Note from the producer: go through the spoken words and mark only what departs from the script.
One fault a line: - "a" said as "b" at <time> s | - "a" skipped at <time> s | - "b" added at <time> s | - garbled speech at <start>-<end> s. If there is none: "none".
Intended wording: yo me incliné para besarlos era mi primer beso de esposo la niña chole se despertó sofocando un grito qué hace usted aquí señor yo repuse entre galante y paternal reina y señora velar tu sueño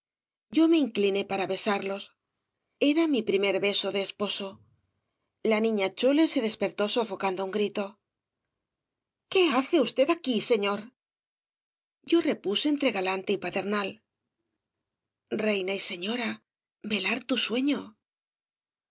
none